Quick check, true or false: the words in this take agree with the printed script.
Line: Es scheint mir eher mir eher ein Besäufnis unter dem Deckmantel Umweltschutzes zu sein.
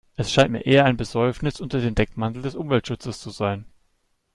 false